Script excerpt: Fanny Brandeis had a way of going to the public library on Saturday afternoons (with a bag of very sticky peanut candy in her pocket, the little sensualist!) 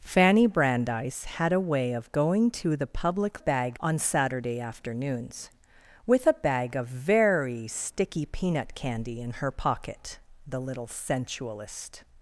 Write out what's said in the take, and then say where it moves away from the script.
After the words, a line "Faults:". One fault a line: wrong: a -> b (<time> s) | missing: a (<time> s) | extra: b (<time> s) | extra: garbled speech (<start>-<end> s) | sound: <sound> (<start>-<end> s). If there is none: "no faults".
Fanny Brandeis had a way of going to the public bag on Saturday afternoons (with a bag of very sticky peanut candy in her pocket, the little sensualist!)
Faults:
wrong: library -> bag (3.4 s)